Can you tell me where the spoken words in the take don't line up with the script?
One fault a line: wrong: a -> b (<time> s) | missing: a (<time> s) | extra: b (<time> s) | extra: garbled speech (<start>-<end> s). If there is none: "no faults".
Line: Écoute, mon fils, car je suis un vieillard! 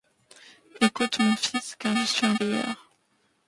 no faults